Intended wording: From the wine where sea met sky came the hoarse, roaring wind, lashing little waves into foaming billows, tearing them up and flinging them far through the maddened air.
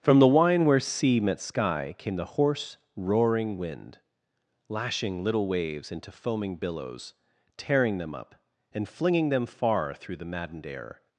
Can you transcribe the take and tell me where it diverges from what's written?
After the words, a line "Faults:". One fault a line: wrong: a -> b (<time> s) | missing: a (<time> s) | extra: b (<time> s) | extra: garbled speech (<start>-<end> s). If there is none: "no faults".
From the wine where sea met sky came the hoarse, roaring wind, lashing little waves into foaming billows, tearing them up and flinging them far through the maddened air.
Faults:
no faults